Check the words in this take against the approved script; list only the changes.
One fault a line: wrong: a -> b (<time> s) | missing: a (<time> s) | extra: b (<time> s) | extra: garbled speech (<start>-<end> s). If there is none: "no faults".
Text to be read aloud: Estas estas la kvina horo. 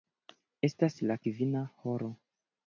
missing: estas (1.0 s)